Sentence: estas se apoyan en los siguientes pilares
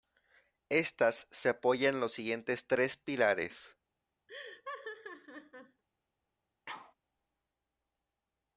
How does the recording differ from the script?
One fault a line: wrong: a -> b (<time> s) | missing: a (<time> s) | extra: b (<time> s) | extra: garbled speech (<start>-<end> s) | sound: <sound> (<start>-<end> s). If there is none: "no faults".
extra: tres (2.7 s)
sound: laugh (4.3-5.8 s)
sound: sneeze (6.7-6.9 s)